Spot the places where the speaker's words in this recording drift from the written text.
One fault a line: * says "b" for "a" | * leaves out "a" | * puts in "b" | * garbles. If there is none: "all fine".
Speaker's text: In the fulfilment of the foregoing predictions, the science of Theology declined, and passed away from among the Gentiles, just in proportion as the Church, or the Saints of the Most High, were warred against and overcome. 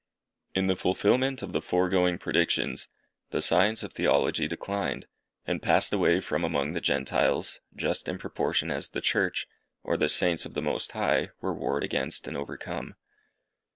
all fine